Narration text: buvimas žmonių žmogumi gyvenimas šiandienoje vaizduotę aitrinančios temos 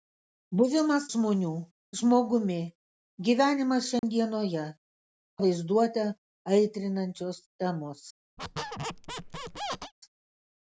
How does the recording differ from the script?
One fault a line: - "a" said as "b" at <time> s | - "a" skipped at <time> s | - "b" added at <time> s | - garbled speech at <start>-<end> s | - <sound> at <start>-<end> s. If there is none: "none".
- dropout at 4.0-4.0 s
- squeak at 8.4-9.9 s